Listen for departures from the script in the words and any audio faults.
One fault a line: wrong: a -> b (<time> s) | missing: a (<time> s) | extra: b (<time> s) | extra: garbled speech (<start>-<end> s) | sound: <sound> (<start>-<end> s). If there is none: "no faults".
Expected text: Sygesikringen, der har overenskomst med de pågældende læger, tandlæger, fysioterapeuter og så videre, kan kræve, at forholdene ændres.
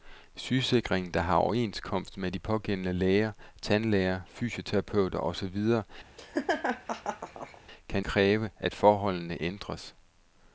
sound: laugh (6.2-7.6 s)